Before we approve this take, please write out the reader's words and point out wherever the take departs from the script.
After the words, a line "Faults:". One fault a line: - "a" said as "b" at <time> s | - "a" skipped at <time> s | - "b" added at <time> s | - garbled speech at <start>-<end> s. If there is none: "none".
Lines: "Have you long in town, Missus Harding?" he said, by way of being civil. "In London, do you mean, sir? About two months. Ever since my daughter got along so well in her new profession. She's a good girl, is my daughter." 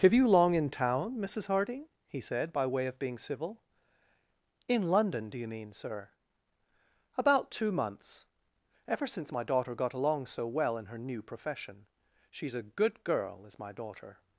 "Have you long in town, Missus Harding?" he said, by way of being civil. "In London, do you mean, sir? About two months. Ever since my daughter got along so well in her new profession. She's a good girl, is my daughter."
Faults:
none